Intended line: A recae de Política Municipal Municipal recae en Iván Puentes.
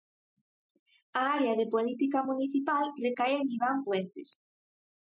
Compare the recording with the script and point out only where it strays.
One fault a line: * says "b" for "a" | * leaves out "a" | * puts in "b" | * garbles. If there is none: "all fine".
* says "área" for "recae"
* leaves out "Municipal"